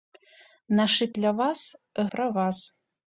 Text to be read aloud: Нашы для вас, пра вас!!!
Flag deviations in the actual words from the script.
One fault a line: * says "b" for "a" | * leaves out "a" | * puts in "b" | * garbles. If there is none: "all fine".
all fine